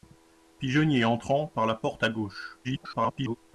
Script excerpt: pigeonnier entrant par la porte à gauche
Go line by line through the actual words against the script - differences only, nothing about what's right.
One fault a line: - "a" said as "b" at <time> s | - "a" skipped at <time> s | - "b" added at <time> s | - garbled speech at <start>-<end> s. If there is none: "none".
- garbled speech at 2.6-3.4 s